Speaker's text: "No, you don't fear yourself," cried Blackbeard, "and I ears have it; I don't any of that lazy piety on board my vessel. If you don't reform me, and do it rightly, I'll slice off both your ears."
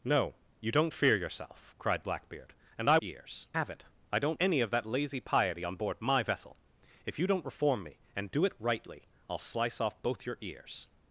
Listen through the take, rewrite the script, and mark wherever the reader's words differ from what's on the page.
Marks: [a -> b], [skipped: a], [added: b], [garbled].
"No, you don't fear yourself," cried Blackbeard, "and I ears have it; I don't any of that lazy piety on board my vessel. If you don't reform me, and do it rightly, I'll slice off both your ears."